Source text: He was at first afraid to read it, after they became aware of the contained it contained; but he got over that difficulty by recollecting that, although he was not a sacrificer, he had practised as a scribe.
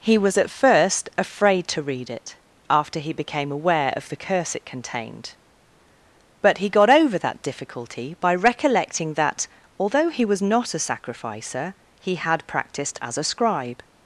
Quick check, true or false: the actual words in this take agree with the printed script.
false